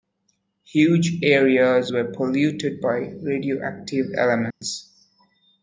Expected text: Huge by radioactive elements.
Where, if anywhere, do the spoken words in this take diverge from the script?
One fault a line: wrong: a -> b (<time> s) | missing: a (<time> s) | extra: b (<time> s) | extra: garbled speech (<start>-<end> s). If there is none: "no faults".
extra: areas were polluted (1.2 s)